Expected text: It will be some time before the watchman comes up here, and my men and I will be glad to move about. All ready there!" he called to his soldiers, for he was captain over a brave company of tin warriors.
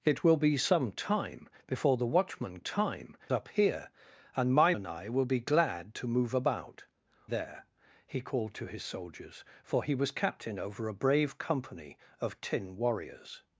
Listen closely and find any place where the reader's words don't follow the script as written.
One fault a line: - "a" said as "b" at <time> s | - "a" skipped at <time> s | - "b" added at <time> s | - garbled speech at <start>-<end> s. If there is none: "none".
- "comes" said as "time" at 2.6 s
- "men" skipped at 4.7 s
- "All ready" skipped at 6.8 s